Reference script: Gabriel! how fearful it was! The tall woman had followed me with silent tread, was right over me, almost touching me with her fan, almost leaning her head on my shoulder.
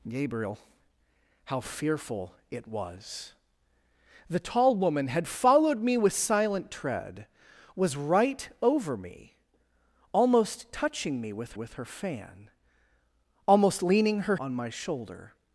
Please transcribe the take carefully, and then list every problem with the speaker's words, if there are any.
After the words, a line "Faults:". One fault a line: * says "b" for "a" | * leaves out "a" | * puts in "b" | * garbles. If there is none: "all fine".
Gabriel! how fearful it was! The tall woman had followed me with silent tread, was right over me, almost touching me with with her fan, almost leaning her on my shoulder.
Faults:
* puts in "with"
* leaves out "head"